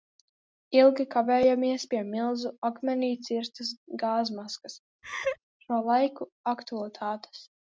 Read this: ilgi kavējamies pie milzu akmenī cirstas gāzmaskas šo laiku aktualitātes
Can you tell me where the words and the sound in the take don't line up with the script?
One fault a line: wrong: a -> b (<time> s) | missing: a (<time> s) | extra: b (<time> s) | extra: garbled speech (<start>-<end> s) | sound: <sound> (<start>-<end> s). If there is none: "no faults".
sound: laugh (5.0-5.4 s)